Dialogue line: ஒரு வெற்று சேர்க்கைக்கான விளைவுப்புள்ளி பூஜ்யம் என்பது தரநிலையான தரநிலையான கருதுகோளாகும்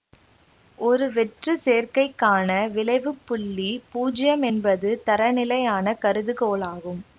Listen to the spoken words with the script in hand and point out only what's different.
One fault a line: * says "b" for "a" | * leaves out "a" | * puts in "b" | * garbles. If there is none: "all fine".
* leaves out "தரநிலையான"